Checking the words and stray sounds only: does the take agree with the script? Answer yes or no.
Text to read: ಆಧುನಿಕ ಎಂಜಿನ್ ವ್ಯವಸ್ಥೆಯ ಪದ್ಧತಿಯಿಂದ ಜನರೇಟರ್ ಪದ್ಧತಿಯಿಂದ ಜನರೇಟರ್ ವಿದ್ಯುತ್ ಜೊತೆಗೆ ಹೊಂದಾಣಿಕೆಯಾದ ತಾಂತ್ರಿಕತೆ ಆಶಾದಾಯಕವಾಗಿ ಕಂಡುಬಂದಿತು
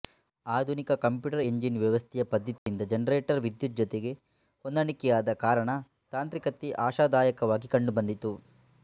no